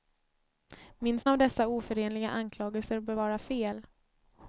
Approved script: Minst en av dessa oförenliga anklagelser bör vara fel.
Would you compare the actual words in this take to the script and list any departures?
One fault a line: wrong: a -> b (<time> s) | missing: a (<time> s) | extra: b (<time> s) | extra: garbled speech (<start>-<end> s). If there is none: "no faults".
missing: en (1.3 s)